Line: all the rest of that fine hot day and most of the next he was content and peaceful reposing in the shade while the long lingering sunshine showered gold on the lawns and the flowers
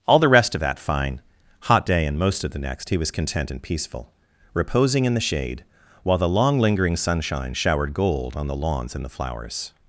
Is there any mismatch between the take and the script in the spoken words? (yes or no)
no